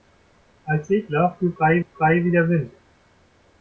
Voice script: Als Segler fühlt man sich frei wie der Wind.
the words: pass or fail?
fail